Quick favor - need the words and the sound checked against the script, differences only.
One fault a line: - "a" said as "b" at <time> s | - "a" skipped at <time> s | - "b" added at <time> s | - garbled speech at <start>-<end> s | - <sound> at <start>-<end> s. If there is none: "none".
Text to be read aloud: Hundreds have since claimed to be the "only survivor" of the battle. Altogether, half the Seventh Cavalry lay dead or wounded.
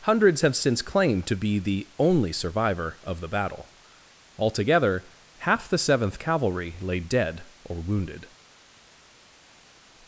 none